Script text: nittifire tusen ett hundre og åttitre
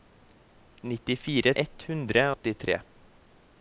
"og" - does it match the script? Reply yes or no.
no